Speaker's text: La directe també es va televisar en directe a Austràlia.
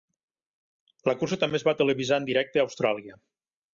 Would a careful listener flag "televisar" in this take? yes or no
no